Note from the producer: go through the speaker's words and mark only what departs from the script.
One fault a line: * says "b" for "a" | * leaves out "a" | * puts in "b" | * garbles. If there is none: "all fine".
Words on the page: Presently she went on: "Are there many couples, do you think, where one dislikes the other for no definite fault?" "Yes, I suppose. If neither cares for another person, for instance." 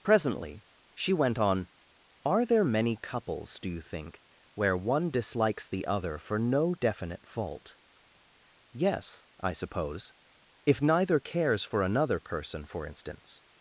all fine